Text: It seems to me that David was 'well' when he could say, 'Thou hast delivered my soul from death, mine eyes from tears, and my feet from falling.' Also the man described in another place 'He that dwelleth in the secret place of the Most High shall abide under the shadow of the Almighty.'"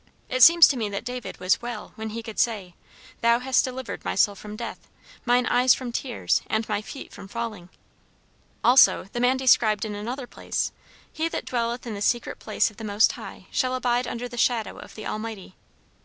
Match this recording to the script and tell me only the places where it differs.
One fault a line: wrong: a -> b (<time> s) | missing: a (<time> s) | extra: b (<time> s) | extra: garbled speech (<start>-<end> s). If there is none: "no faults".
no faults